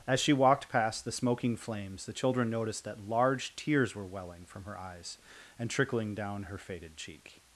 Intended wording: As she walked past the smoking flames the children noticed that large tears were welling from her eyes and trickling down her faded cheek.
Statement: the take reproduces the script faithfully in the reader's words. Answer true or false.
true